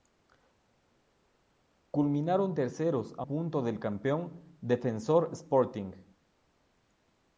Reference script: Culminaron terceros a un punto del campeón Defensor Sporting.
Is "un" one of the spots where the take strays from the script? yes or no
yes